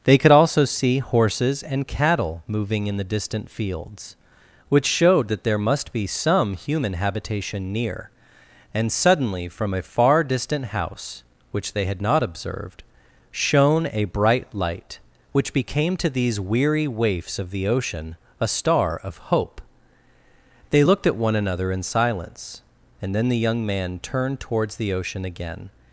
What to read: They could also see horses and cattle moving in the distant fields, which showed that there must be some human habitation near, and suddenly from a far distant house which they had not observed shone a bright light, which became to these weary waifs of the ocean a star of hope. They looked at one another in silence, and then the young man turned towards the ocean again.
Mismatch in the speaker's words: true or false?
false